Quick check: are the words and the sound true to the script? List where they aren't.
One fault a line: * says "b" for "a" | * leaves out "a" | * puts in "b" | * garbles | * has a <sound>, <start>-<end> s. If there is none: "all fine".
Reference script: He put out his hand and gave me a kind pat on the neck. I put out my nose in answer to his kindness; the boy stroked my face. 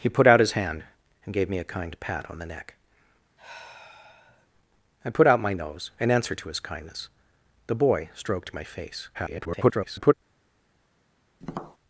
* has a sigh, 3.4-4.5 s
* garbles
* has a tap, 11.4-11.8 s